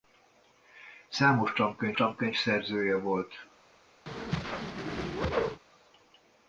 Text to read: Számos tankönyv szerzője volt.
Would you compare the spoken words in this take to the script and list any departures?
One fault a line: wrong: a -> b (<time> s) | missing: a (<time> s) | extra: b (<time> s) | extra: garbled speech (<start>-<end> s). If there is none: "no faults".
extra: tankönyv (1.9 s)